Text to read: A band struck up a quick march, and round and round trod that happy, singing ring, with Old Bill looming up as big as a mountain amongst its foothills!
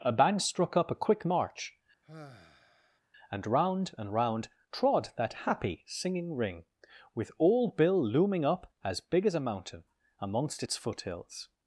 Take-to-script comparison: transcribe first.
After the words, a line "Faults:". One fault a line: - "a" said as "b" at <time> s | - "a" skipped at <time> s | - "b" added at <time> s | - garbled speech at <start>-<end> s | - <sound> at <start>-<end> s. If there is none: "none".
A band struck up a quick march, and round and round trod that happy, singing ring, with Old Bill looming up as big as a mountain amongst its foothills!
Faults:
- sigh at 2.0-3.0 s